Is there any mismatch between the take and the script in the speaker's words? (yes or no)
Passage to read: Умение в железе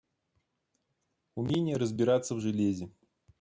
yes